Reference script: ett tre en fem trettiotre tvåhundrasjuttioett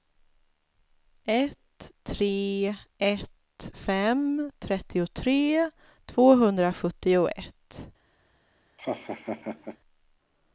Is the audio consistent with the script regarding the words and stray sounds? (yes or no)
no